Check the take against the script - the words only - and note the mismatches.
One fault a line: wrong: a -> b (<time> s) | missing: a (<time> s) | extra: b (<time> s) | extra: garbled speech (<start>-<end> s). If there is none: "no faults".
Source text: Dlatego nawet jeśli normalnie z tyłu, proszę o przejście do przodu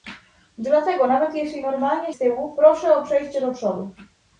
no faults